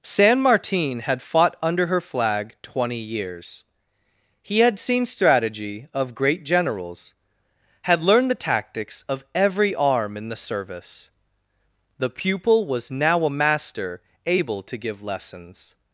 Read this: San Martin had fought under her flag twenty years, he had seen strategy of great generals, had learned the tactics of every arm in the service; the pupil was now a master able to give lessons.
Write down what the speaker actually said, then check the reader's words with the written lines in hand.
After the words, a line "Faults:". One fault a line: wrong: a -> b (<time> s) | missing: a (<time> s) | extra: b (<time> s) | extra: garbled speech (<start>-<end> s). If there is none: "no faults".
San Martin had fought under her flag twenty years, he had seen strategy of great generals, had learned the tactics of every arm in the service; the pupil was now a master able to give lessons.
Faults:
no faults